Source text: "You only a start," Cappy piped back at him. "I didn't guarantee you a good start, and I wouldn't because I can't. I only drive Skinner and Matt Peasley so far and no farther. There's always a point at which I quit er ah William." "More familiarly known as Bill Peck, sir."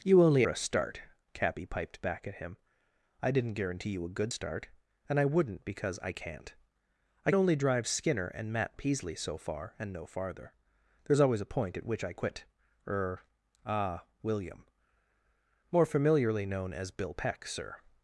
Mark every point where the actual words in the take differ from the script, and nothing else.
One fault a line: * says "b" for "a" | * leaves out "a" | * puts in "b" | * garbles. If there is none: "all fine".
all fine